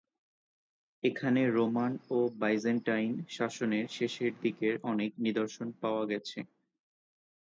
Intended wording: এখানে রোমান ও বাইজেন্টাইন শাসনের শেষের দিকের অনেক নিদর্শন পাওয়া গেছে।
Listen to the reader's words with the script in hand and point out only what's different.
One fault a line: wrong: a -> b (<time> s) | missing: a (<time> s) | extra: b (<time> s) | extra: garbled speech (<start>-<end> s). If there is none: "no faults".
no faults